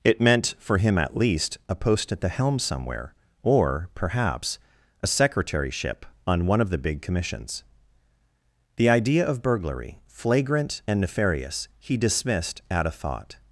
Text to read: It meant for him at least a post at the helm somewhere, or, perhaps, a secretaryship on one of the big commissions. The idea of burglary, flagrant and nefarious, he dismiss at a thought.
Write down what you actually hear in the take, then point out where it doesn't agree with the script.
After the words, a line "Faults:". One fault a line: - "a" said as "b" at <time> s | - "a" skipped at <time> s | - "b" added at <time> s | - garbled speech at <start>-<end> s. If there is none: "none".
It meant for him at least a post at the helm somewhere, or, perhaps, a secretaryship on one of the big commissions. The idea of burglary, flagrant and nefarious, he dismissed at a thought.
Faults:
- "dismiss" said as "dismissed" at 12.0 s